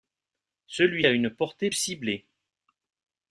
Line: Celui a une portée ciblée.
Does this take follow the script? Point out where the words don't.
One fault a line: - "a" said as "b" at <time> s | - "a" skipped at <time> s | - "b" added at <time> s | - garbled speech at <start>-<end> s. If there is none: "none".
none